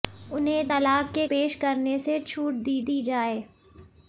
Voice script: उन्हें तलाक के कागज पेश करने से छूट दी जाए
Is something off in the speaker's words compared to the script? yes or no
yes